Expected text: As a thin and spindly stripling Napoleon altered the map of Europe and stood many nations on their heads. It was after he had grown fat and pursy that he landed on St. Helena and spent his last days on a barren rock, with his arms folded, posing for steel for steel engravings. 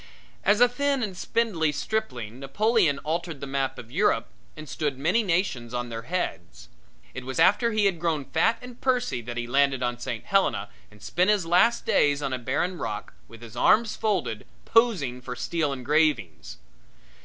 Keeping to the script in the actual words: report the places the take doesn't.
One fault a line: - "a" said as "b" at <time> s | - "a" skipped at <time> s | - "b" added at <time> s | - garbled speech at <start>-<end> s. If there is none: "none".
- "for steel" skipped at 15.7 s